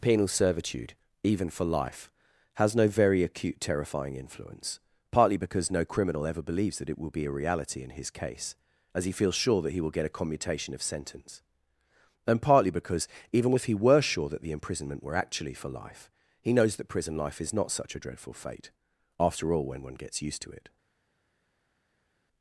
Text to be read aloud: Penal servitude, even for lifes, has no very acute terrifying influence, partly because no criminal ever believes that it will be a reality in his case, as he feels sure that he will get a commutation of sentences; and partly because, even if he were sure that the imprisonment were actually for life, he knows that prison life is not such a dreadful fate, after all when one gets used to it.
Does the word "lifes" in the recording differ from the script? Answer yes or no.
yes